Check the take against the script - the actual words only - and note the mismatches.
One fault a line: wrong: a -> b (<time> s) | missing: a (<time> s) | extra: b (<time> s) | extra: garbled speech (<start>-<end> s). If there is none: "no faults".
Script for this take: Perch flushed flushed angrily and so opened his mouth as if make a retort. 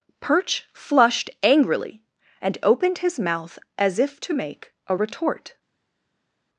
missing: flushed (1.3 s)
missing: so (2.6 s)
extra: to (4.2 s)